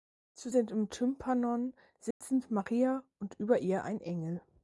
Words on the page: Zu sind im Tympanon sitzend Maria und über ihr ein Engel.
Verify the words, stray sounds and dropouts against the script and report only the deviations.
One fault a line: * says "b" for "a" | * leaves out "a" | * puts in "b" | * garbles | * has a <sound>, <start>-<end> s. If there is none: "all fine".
* has a dropout, 2.1-2.2 s